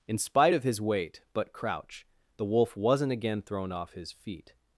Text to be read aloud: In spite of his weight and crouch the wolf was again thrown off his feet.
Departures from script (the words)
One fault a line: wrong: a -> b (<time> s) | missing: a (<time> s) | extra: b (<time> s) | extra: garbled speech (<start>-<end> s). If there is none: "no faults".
wrong: and -> but (1.3 s)
wrong: was -> wasn't (2.8 s)